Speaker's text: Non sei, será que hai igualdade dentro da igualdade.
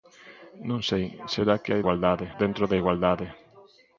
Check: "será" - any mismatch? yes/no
no